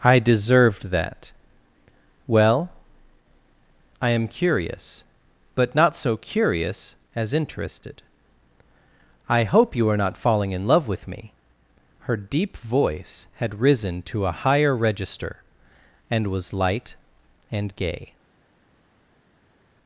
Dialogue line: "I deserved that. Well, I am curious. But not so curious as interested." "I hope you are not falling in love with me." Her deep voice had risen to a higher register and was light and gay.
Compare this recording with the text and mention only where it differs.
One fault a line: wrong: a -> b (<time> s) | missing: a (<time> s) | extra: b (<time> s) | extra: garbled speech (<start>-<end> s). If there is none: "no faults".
no faults